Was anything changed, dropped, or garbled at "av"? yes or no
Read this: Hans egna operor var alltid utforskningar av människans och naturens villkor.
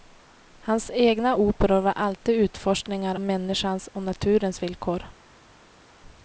yes